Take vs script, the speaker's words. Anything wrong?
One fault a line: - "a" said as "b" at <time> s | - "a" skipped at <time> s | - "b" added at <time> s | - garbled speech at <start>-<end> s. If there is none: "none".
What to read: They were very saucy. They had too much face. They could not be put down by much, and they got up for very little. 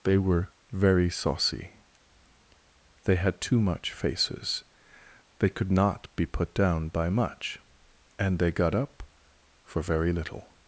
- "face" said as "faces" at 3.9 s